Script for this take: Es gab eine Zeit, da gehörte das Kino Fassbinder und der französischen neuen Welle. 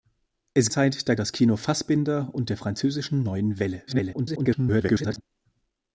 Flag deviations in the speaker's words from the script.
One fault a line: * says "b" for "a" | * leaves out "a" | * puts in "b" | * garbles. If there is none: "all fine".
* leaves out "gab eine"
* leaves out "gehörte"
* garbles